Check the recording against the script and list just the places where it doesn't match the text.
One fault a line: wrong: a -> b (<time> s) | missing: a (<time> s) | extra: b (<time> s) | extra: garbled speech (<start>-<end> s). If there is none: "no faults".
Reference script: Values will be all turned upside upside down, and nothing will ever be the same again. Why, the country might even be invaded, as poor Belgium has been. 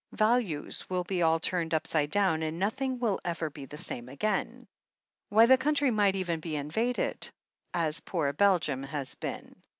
missing: upside (2.1 s)